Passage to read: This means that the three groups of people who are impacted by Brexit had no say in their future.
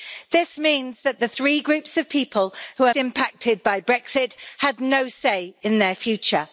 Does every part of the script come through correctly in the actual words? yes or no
yes